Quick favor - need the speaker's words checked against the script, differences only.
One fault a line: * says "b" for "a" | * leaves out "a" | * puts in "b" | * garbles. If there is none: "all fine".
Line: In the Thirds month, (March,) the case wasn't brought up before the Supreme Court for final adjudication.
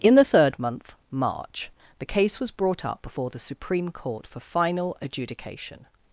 * says "Third" for "Thirds"
* says "was" for "wasn't"